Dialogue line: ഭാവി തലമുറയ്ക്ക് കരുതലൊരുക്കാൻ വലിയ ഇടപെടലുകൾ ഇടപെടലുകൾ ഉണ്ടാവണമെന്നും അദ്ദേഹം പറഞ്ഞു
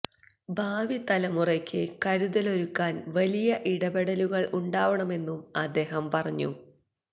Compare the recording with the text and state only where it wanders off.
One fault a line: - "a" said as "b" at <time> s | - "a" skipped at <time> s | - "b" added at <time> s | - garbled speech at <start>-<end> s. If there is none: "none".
- "ഇടപെടലുകൾ" skipped at 4.5 s